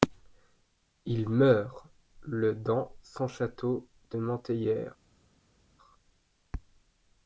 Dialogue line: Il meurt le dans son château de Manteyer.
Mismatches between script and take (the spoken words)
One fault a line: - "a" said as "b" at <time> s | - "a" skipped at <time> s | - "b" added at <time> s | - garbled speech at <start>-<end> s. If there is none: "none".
none